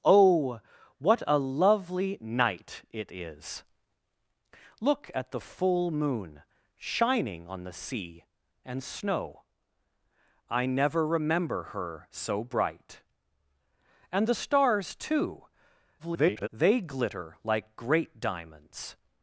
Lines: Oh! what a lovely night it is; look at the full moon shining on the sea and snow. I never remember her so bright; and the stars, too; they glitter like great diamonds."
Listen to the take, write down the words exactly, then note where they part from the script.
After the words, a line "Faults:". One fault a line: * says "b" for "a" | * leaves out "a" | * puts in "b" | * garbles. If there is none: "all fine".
Oh! what a lovely night it is; look at the full moon shining on the sea and snow. I never remember her so bright; and the stars, too; [garbled] they glitter like great diamonds."
Faults:
* garbles